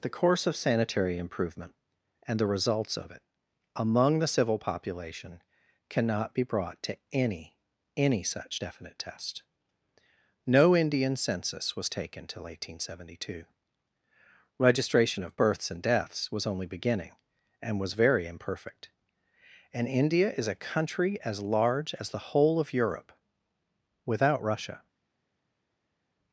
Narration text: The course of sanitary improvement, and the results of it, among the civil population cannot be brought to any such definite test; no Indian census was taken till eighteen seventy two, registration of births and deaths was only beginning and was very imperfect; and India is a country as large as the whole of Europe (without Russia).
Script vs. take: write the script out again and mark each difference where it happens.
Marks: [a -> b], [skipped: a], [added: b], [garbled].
The course of sanitary improvement, and the results of it, among the civil population cannot be brought to any [added: any] such definite test; no Indian census was taken till eighteen seventy two, registration of births and deaths was only beginning and was very imperfect; and India is a country as large as the whole of Europe (without Russia).